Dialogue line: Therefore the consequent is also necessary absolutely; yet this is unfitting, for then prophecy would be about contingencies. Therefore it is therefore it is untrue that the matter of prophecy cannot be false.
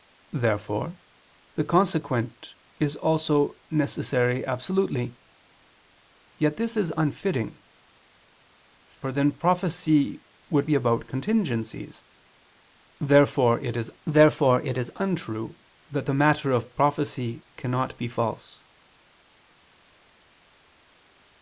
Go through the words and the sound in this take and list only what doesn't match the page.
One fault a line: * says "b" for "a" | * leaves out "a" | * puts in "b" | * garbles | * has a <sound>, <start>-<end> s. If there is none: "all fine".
all fine